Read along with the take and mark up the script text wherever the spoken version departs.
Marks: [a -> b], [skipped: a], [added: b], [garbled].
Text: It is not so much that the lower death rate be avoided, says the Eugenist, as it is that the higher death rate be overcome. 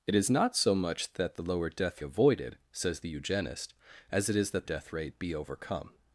It is not so much that the lower death [skipped: rate be] avoided, says the Eugenist, as it is that [skipped: the higher] death rate be overcome.